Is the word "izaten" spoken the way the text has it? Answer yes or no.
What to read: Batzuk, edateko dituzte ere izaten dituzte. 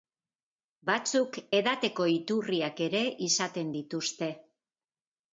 yes